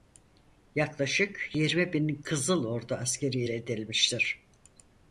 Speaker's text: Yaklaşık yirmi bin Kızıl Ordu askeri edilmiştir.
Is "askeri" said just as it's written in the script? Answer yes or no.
yes